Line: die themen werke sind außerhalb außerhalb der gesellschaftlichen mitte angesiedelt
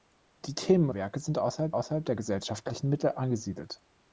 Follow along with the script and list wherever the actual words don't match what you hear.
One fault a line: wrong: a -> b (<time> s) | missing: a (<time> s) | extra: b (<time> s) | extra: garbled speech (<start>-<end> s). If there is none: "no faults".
no faults